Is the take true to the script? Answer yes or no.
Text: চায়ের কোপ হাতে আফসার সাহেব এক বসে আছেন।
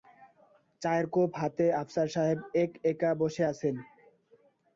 no